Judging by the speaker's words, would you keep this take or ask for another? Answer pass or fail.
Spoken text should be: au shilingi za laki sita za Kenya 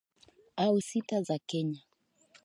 fail